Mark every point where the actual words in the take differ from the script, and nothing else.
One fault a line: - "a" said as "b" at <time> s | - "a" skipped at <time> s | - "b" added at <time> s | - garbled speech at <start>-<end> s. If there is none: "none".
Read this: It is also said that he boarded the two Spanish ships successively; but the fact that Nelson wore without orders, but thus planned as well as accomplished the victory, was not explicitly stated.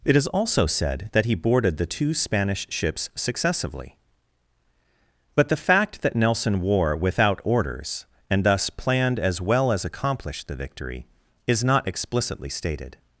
- "but" said as "and" at 8.3 s
- "was" said as "is" at 11.5 s